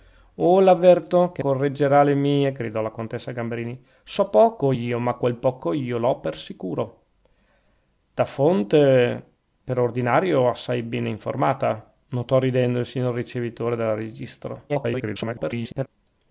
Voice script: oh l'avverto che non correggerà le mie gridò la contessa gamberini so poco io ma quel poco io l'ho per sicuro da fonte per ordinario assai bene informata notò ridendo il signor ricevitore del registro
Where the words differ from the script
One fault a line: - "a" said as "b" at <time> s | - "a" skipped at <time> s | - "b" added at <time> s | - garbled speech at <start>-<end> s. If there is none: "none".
- "non" skipped at 1.4 s
- garbled speech at 14.7-15.9 s